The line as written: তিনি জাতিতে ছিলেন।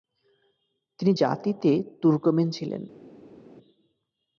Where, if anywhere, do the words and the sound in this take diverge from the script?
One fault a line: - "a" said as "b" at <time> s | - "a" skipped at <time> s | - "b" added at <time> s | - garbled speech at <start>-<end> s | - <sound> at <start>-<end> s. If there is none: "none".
- "তুর্কমেন" added at 2.0 s